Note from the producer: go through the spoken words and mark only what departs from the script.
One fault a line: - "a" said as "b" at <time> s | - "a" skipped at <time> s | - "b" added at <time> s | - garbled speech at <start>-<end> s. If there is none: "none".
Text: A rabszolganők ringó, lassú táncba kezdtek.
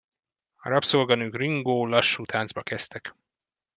none